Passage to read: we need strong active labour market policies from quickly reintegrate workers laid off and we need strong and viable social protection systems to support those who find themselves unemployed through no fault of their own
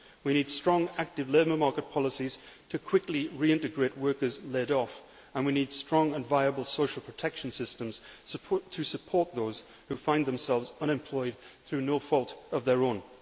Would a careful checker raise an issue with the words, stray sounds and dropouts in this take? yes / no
yes